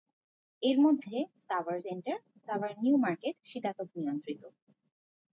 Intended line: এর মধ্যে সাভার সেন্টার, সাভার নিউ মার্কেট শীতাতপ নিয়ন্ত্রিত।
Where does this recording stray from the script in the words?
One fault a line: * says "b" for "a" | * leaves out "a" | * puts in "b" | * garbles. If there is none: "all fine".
all fine